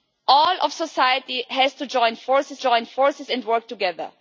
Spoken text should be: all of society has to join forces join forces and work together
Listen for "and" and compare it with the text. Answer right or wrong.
right